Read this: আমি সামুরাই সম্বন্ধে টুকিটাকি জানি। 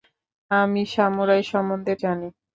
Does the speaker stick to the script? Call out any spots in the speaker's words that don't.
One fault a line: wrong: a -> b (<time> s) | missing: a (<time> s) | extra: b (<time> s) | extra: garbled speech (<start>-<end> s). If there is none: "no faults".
missing: টুকিটাকি (1.9 s)